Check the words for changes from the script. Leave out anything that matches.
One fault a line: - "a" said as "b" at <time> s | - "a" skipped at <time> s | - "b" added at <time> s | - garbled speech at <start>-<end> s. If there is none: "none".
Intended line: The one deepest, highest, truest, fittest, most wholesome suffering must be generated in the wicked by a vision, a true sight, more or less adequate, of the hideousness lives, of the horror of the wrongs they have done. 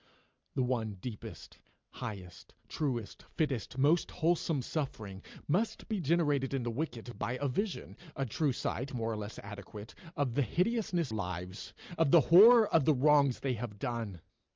none